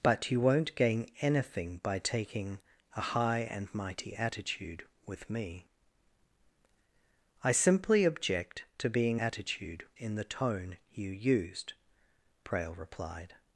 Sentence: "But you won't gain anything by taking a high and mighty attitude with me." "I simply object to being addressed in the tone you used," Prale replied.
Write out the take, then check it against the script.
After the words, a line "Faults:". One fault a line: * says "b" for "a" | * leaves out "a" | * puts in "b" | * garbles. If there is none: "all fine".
"But you won't gain anything by taking a high and mighty attitude with me." "I simply object to being attitude in the tone you used," Prale replied.
Faults:
* says "attitude" for "addressed"